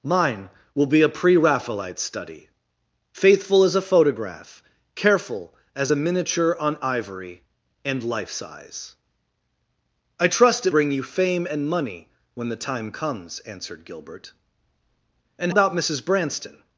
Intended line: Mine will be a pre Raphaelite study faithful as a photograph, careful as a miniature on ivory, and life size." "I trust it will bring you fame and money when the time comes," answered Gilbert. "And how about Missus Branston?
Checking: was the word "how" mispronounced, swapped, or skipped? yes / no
yes